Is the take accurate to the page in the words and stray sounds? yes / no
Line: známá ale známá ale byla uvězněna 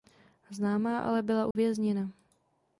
no